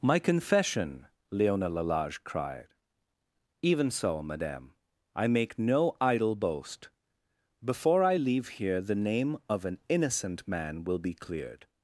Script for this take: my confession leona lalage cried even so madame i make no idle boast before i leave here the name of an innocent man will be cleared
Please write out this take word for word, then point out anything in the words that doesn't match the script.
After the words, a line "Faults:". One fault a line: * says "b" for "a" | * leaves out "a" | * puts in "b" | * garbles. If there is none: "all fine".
my confession leona lalage cried even so madame i make no idle boast before i leave here the name of an innocent man will be cleared
Faults:
all fine